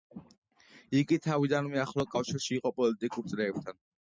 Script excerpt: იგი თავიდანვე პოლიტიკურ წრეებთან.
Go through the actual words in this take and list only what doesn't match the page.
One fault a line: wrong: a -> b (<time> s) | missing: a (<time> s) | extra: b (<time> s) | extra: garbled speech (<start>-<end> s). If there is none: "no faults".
extra: ახლო კავშირში იყო (1.8 s)